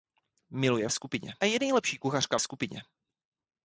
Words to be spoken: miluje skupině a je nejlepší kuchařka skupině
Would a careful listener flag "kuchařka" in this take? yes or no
no